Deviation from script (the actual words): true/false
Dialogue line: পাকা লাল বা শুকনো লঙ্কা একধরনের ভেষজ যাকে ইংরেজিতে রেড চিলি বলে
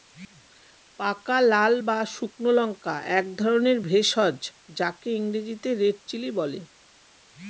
false